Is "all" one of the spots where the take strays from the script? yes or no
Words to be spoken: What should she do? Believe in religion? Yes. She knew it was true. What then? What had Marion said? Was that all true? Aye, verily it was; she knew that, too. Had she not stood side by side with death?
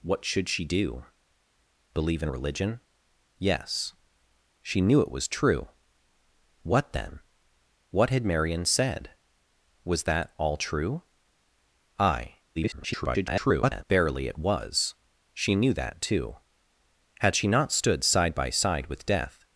no